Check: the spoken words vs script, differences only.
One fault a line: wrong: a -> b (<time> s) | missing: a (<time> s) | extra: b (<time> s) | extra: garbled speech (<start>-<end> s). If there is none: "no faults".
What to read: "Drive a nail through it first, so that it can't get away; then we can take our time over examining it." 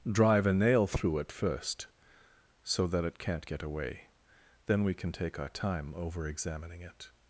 no faults